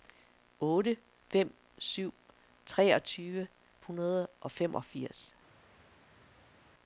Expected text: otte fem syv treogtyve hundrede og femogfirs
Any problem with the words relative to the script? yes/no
no